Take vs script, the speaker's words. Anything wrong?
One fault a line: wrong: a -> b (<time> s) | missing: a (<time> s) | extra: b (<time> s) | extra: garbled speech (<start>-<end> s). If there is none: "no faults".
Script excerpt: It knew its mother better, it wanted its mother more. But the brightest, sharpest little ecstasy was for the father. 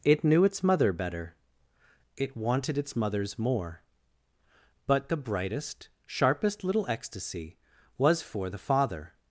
wrong: mother -> mothers (3.0 s)